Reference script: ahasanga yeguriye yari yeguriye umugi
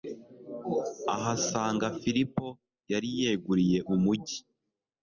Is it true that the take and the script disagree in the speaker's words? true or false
true